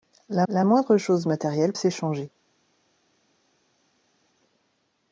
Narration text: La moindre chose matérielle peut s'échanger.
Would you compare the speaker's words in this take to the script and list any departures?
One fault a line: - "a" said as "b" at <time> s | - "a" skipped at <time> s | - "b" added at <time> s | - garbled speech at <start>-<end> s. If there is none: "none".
- "la" added at 0.5 s
- "peut" skipped at 1.7 s